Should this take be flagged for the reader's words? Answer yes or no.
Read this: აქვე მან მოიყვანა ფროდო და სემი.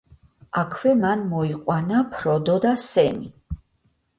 no